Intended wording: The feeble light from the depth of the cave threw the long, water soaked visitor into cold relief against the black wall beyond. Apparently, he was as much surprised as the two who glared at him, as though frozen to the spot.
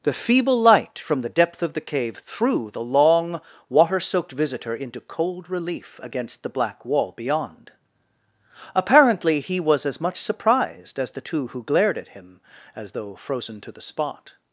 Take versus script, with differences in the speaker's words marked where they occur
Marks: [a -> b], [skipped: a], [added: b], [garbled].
The feeble light from the depth of the cave threw the long, water soaked visitor into cold relief against the black wall beyond. Apparently, he was as much surprised as the two who glared at him, as though frozen to the spot.